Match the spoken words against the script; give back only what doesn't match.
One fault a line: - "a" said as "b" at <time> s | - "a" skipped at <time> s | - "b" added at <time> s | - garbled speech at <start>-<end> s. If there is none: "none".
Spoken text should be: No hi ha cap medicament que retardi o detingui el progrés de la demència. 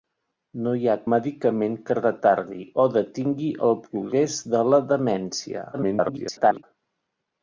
- "cap" skipped at 0.9 s
- garbled speech at 5.7-6.6 s